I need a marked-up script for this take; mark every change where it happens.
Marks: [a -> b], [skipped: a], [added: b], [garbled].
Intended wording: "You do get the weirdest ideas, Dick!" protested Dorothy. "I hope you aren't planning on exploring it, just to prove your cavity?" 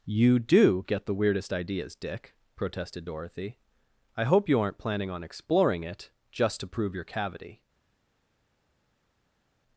"You do get the weirdest ideas, Dick!" protested Dorothy. "I hope you aren't planning on exploring it, just to prove your cavity?"